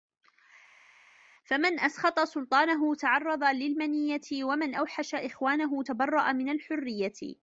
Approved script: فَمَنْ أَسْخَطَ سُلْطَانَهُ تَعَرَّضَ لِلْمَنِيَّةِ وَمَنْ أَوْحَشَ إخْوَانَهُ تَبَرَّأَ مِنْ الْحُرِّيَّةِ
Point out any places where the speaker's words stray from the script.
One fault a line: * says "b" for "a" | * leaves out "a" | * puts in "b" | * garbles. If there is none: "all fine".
all fine